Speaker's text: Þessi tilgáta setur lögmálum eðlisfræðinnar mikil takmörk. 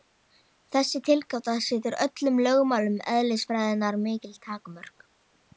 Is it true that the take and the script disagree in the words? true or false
true